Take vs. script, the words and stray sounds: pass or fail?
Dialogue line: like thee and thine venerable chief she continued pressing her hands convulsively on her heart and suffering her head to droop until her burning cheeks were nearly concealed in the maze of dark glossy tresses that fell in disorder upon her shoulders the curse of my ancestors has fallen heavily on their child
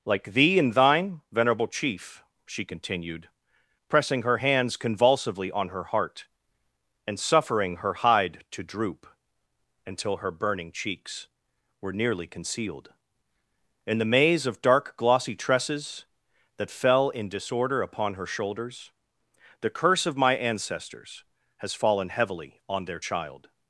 fail